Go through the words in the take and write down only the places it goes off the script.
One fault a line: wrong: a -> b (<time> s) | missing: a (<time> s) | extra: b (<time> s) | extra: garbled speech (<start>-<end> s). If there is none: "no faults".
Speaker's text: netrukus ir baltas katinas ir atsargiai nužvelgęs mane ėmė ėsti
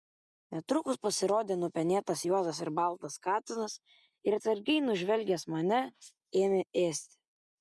extra: pasirodė nupenėtas juodas (1.1 s)